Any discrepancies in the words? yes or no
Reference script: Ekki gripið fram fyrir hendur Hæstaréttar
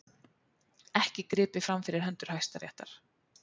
no